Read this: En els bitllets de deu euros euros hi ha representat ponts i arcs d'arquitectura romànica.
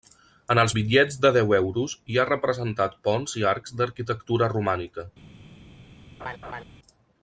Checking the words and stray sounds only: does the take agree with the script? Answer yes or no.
no